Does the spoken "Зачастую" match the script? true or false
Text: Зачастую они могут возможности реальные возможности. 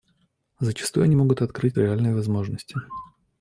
true